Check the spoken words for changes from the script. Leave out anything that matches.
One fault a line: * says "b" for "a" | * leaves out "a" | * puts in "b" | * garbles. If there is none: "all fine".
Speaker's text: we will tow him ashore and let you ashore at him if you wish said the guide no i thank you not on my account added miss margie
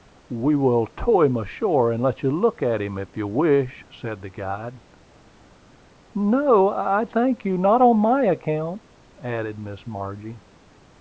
* says "look" for "ashore"